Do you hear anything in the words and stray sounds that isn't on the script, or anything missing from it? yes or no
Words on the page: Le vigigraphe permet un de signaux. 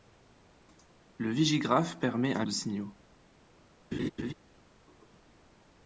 yes